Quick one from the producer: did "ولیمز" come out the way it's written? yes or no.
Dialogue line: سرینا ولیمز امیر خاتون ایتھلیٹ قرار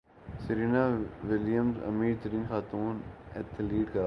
yes